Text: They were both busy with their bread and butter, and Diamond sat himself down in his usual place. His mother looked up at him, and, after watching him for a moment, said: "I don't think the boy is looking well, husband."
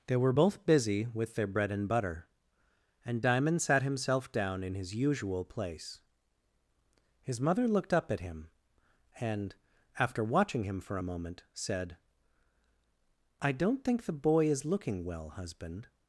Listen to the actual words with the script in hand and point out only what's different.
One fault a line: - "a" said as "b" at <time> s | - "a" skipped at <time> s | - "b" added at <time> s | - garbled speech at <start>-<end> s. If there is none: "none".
none